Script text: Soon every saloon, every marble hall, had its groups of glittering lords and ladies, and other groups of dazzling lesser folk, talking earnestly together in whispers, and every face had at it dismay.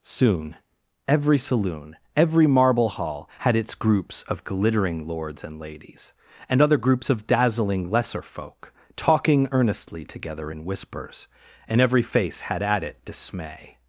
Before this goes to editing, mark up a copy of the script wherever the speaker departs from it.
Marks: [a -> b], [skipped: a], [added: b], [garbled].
Soon every saloon, every marble hall, had its groups of glittering lords and ladies, and other groups of dazzling lesser folk, talking earnestly together in whispers, and every face had at it dismay.